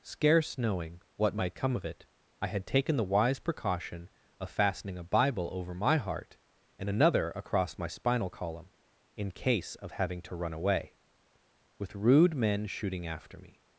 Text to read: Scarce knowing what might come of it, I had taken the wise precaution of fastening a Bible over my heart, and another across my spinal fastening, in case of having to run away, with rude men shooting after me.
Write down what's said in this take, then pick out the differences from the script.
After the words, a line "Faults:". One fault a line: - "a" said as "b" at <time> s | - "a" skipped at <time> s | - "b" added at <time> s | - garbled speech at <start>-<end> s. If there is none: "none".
Scarce knowing what might come of it, I had taken the wise precaution of fastening a Bible over my heart, and another across my spinal column, in case of having to run away, with rude men shooting after me.
Faults:
- "fastening" said as "column" at 8.3 s